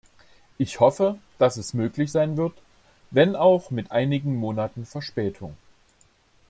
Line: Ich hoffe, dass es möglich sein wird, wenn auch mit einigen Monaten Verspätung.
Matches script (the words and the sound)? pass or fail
pass